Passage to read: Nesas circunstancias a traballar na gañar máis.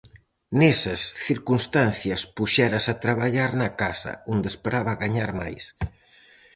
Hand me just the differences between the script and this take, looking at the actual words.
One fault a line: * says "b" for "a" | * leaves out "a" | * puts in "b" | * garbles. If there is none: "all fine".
* puts in "puxérase"
* puts in "casa onde esperaba"